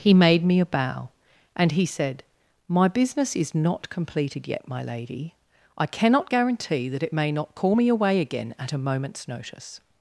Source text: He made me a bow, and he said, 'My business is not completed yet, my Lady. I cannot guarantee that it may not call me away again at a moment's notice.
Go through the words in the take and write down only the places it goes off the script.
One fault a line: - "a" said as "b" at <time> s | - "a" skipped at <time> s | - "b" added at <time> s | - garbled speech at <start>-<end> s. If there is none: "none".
none